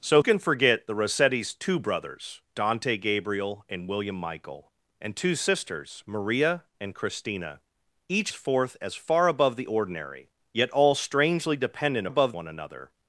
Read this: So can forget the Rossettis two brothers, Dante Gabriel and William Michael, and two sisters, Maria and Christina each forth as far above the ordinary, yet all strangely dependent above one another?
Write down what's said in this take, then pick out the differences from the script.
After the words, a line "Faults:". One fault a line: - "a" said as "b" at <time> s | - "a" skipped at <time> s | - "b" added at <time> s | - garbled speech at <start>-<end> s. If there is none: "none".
So can forget the Rossettis two brothers, Dante Gabriel and William Michael, and two sisters, Maria and Christina each forth as far above the ordinary, yet all strangely dependent above one another?
Faults:
none